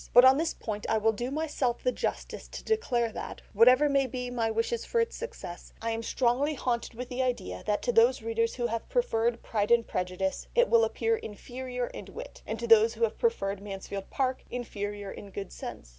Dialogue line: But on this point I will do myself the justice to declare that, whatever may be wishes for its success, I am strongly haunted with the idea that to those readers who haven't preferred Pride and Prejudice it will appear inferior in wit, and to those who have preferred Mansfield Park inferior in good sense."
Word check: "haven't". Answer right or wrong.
wrong